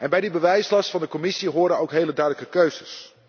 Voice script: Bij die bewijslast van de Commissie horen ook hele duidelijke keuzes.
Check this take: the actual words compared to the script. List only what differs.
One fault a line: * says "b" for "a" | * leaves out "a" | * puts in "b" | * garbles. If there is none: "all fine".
all fine